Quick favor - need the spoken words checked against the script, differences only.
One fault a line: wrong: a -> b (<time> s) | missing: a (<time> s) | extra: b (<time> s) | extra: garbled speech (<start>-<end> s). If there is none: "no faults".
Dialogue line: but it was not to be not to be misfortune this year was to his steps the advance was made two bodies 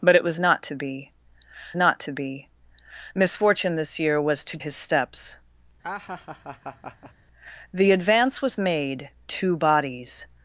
no faults